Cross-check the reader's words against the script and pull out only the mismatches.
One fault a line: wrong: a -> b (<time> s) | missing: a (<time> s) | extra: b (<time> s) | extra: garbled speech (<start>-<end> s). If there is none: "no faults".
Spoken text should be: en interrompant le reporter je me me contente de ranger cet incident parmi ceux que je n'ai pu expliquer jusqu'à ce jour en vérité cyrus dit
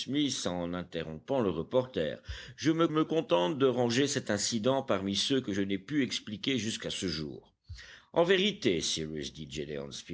no faults